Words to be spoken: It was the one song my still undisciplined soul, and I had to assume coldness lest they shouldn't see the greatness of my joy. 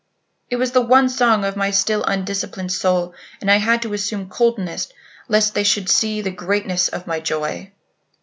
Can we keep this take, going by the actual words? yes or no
no